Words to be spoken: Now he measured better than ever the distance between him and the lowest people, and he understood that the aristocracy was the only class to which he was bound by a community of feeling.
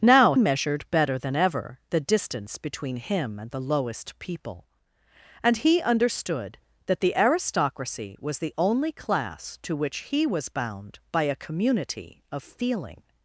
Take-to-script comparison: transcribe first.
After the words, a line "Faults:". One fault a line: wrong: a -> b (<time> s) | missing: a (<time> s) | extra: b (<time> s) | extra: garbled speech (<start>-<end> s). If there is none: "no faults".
Now measured better than ever the distance between him and the lowest people, and he understood that the aristocracy was the only class to which he was bound by a community of feeling.
Faults:
missing: he (0.3 s)